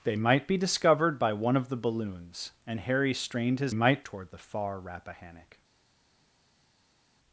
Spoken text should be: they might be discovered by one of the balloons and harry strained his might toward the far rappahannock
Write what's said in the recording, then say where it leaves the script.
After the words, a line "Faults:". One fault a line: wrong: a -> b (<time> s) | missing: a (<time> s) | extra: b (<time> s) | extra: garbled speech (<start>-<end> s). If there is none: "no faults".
they might be discovered by one of the balloons and harry strained his might toward the far rappahannock
Faults:
no faults